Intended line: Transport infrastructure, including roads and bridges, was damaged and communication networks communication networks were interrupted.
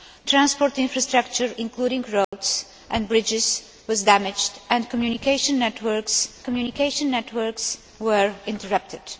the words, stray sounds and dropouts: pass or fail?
fail